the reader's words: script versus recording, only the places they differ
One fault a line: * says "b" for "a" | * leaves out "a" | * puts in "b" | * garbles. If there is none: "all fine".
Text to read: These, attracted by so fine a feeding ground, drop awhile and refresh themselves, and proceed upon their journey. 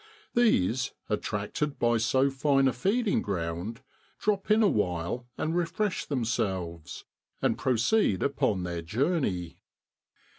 * puts in "in"